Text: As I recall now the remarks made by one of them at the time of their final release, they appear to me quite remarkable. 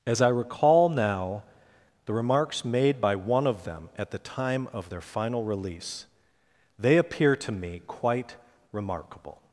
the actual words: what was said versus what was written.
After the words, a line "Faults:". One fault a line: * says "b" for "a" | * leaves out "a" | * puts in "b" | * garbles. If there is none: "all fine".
As I recall now the remarks made by one of them at the time of their final release, they appear to me quite remarkable.
Faults:
all fine